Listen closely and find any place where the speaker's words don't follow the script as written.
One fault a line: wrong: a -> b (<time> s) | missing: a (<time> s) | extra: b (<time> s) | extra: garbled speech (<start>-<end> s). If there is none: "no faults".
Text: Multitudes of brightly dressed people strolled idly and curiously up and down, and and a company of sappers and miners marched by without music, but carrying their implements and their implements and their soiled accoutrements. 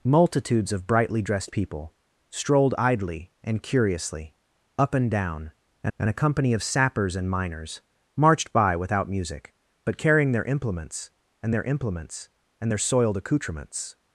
no faults